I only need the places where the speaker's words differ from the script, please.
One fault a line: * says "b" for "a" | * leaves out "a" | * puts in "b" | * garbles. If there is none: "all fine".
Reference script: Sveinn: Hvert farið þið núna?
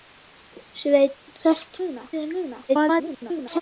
* says "núna" for "farið"
* garbles